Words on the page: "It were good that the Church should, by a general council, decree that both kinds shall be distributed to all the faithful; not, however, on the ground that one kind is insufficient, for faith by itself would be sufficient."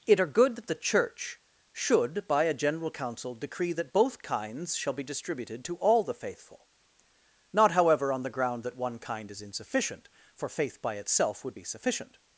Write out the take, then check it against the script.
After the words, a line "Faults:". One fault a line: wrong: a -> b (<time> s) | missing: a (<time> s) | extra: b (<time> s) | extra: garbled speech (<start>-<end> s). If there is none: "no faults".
"It are good that the Church should, by a general council, decree that both kinds shall be distributed to all the faithful; not, however, on the ground that one kind is insufficient, for faith by itself would be sufficient."
Faults:
wrong: were -> are (0.2 s)